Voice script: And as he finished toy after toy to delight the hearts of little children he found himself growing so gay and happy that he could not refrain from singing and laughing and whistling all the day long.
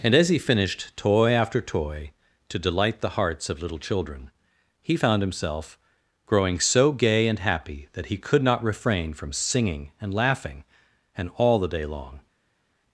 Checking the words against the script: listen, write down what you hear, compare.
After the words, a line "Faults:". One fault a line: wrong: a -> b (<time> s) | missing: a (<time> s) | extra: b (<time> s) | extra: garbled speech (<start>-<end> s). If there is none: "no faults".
And as he finished toy after toy to delight the hearts of little children he found himself growing so gay and happy that he could not refrain from singing and laughing and all the day long.
Faults:
missing: whistling (11.3 s)